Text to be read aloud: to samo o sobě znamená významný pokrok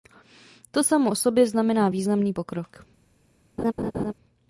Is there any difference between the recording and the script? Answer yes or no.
no